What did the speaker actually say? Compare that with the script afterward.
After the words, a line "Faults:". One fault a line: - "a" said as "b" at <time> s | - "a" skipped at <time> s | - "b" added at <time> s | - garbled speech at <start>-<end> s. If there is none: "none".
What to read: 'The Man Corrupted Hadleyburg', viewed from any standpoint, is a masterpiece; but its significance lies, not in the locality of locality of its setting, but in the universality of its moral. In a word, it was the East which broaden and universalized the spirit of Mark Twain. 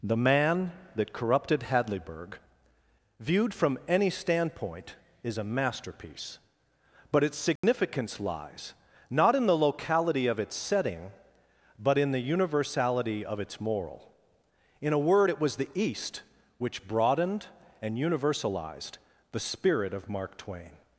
'The Man that Corrupted Hadleyburg', viewed from any standpoint, is a masterpiece; but its significance lies, not in the locality of its setting, but in the universality of its moral. In a word, it was the East which broadened and universalized the spirit of Mark Twain.
Faults:
- "that" added at 0.9 s
- "locality of" skipped at 10.4 s
- "broaden" said as "broadened" at 16.9 s